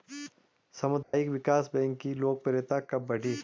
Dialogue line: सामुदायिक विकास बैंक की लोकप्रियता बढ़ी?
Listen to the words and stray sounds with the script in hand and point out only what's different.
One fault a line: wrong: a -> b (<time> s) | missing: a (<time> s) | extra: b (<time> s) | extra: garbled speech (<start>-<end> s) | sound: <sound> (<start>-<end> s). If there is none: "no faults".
sound: dropout (1.0-1.1 s)
extra: कब (2.9 s)